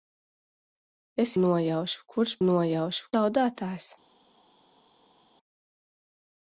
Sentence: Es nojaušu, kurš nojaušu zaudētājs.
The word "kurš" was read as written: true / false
true